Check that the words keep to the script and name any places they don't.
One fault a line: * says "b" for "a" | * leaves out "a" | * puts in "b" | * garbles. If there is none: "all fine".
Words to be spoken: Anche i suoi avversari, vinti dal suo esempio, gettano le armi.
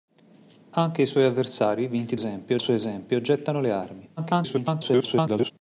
* says "esempio" for "dal"
* garbles